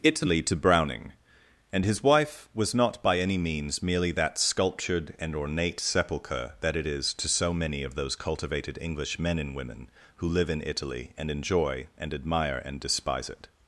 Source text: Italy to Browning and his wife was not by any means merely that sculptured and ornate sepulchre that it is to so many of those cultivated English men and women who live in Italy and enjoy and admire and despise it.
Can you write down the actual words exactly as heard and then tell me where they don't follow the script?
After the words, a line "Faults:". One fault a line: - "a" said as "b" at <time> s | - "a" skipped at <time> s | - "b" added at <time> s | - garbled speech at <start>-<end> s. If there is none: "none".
Italy to Browning and his wife was not by any means merely that sculptured and ornate sepulchre that it is to so many of those cultivated English men and women who live in Italy and enjoy and admire and despise it.
Faults:
none